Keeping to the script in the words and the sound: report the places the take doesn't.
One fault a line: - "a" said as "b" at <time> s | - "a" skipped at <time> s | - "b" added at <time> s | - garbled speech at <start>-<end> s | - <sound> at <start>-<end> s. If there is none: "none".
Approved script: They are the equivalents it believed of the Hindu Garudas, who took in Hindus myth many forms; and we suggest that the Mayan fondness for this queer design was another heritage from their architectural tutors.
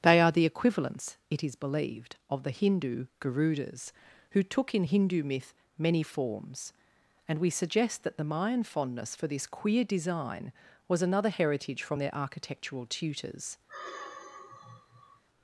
- "is" added at 1.4 s
- "Hindus" said as "Hindu" at 4.8 s
- sigh at 13.7-15.2 s